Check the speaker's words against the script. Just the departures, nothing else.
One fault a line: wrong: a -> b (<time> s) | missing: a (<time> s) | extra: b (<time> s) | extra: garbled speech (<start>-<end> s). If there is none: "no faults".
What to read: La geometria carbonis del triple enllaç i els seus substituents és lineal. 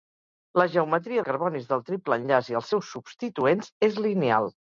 no faults